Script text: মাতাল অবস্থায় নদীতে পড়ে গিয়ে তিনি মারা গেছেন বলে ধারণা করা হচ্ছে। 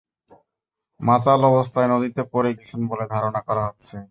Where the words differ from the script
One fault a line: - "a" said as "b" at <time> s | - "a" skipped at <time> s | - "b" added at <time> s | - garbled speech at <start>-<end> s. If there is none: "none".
- "গিয়ে তিনি মারা" skipped at 2.5 s